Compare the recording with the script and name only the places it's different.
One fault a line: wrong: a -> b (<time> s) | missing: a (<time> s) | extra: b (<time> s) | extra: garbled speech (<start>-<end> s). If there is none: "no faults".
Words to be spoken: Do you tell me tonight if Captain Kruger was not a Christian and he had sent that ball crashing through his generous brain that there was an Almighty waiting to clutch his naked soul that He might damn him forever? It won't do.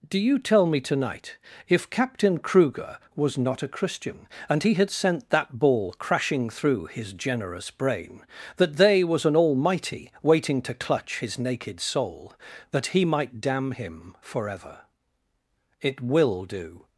wrong: there -> they (8.8 s)
wrong: won't -> will (16.0 s)